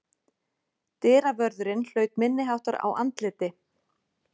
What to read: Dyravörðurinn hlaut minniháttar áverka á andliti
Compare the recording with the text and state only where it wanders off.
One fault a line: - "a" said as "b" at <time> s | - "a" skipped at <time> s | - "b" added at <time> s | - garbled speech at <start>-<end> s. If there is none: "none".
- "áverka" skipped at 2.8 s